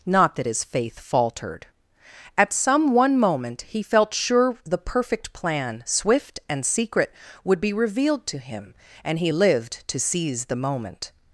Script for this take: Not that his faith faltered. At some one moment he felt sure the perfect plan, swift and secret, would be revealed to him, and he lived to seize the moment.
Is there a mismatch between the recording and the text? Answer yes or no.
no